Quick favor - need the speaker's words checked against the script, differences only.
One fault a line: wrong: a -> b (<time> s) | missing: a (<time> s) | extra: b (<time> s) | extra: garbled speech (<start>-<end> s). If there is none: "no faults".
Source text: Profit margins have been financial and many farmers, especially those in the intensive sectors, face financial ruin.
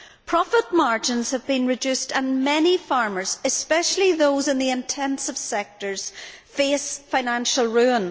wrong: financial -> reduced (1.7 s)